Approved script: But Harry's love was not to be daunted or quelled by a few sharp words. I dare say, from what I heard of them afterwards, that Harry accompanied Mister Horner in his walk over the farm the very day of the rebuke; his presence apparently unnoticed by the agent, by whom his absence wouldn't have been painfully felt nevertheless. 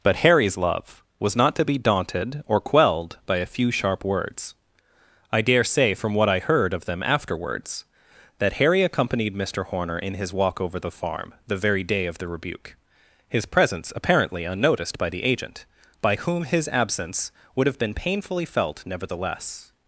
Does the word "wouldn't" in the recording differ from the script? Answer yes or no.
yes